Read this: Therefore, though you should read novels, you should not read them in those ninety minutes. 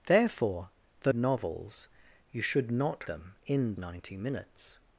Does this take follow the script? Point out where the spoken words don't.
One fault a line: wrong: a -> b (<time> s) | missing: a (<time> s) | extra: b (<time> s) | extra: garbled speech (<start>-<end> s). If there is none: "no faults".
missing: you should read (1.1 s)
missing: read (3.0 s)
missing: those (3.8 s)